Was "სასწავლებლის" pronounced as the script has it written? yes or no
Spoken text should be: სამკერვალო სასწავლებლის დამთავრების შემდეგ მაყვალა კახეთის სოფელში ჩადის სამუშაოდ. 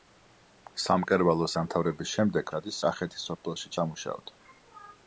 no